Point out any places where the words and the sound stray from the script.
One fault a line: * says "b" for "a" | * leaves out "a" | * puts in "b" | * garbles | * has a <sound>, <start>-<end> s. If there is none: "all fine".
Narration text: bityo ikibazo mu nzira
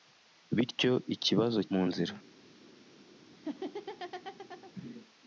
* has a laugh, 3.3-4.7 s